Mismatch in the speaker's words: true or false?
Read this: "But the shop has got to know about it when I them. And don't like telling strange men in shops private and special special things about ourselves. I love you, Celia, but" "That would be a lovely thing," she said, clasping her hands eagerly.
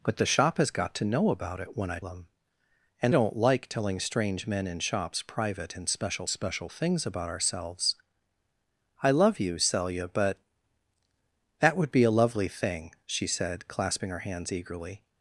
false